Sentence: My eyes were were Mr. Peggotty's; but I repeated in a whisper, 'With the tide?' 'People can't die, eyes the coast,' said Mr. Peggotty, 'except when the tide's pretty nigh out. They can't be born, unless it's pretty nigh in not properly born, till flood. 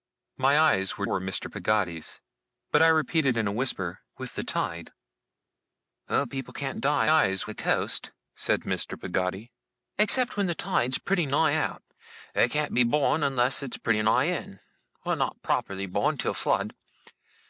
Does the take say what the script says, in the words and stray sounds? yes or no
yes